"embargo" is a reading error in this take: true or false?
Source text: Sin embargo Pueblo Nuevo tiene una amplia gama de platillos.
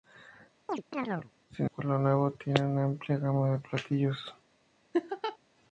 true